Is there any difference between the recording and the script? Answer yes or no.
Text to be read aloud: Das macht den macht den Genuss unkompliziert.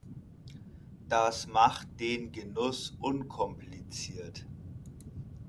yes